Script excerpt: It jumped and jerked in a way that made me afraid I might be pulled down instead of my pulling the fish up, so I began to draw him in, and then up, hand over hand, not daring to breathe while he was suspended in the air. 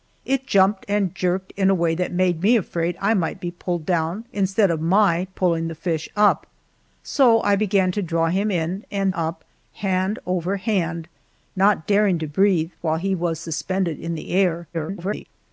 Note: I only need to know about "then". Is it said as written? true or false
false